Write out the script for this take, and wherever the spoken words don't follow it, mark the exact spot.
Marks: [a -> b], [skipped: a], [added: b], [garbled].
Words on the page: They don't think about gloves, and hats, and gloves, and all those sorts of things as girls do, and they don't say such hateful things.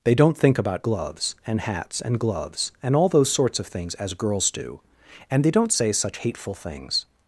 They don't think about gloves, and hats, and gloves, and all those sorts of things as girls do, and they don't say such hateful things.